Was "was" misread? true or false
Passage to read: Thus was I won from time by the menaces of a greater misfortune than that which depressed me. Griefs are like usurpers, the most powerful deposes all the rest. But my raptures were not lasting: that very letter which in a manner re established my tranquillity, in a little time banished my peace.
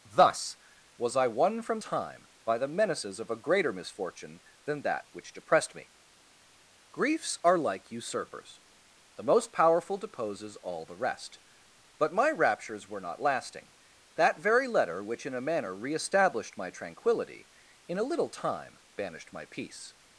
false